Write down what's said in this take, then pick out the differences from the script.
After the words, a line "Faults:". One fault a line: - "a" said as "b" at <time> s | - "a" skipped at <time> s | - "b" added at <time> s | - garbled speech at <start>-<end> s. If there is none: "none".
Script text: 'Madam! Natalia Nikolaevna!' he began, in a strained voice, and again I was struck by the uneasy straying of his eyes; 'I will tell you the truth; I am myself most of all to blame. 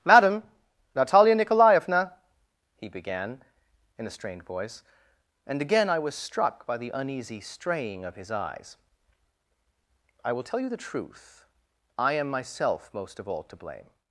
'Madam! Natalia Nikolaevna!' he began, in a strained voice, and again I was struck by the uneasy straying of his eyes; 'I will tell you the truth; I am myself most of all to blame.
Faults:
none